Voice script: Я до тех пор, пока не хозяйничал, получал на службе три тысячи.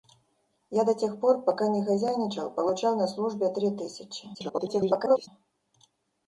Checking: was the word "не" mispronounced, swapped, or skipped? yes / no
no